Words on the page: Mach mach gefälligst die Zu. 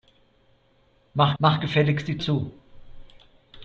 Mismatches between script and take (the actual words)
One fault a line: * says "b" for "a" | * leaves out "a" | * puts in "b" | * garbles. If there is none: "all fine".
all fine